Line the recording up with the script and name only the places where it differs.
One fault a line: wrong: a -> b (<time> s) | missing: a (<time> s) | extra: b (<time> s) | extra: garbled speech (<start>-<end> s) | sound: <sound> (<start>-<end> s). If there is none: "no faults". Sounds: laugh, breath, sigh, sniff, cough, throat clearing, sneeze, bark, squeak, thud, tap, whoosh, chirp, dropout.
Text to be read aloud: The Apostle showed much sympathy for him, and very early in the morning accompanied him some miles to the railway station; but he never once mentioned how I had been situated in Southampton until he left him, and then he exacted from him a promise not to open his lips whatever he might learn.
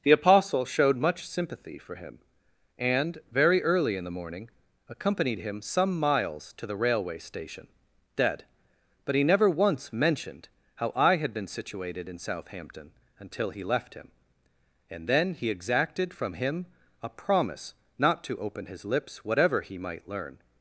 extra: dead (8.2 s)